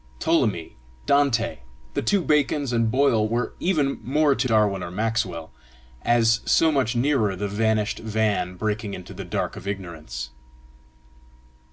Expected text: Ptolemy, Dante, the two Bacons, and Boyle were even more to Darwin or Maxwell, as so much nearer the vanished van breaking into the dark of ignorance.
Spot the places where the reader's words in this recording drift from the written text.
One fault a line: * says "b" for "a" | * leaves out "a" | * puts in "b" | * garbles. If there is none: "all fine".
all fine